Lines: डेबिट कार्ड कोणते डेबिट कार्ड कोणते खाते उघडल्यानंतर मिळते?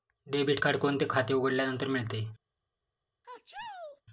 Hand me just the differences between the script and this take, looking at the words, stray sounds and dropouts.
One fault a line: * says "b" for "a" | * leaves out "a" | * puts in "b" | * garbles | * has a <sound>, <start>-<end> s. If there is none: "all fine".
* leaves out "डेबिट कार्ड कोणते"
* has a sneeze, 3.2-4.0 s